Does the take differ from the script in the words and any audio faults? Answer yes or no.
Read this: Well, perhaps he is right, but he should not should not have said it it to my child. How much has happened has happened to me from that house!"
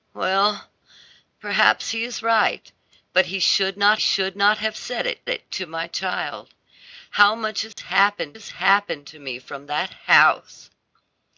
yes